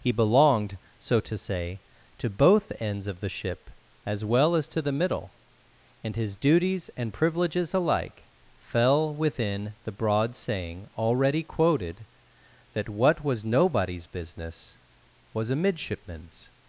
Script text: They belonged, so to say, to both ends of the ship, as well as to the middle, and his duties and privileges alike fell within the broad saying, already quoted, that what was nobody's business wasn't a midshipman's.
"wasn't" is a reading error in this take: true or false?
true